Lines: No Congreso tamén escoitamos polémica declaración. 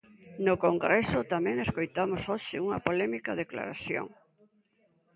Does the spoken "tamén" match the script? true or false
true